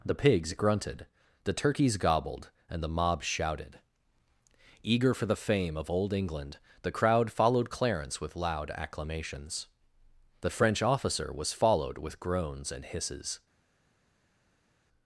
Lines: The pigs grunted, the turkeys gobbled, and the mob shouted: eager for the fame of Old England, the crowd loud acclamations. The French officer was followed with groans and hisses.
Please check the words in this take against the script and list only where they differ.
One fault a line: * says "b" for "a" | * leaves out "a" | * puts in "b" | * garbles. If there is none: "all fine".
* puts in "followed Clarence with"